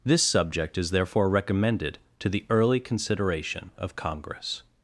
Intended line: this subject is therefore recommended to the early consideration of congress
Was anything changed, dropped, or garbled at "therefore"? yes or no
no